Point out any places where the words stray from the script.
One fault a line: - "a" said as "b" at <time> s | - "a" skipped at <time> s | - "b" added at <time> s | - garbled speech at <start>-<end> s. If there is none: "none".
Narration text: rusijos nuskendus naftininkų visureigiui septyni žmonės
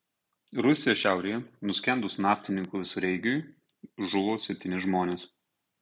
- "šiaurėje" added at 1.0 s
- "žuvo" added at 4.1 s